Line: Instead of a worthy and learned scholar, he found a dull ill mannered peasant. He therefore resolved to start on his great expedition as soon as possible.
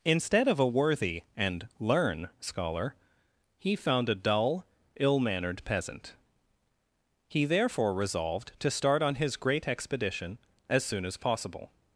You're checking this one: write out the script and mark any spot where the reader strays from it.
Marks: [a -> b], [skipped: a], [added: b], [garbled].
Instead of a worthy and [learned -> learn] scholar, he found a dull ill mannered peasant. He therefore resolved to start on his great expedition as soon as possible.